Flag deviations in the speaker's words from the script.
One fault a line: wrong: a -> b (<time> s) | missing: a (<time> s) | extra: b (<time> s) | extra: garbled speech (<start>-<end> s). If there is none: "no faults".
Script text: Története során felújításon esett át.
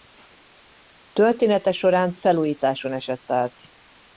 no faults